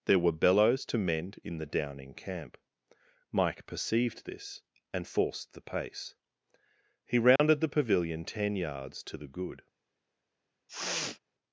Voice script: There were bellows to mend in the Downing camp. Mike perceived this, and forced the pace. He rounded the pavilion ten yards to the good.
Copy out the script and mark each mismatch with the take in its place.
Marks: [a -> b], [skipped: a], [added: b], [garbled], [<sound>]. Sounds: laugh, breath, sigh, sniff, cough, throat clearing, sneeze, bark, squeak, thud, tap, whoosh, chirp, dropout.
There were bellows to mend in the Downing camp. Mike perceived this, and forced the pace. He rounded [dropout] the pavilion ten yards to the good. [sniff]